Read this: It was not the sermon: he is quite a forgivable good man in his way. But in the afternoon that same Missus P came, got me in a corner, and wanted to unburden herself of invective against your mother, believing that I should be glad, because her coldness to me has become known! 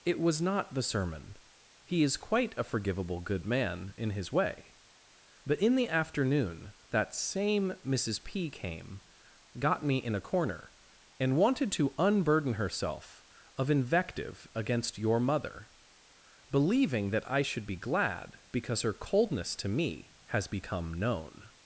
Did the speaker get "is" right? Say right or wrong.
right